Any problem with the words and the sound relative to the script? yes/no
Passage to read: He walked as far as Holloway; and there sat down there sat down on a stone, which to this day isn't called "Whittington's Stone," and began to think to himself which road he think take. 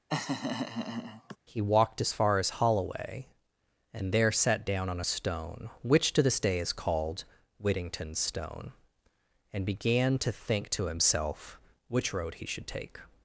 yes